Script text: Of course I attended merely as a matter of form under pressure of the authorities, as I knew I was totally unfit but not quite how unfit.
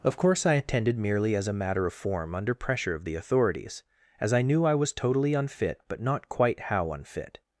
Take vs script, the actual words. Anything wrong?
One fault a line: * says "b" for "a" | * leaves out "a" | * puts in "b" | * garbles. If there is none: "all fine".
all fine